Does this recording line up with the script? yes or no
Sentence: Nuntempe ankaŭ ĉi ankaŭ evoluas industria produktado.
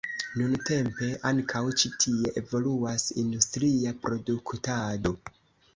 no